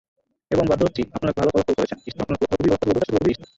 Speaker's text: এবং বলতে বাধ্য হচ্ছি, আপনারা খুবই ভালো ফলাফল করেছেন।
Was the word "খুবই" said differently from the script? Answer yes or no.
yes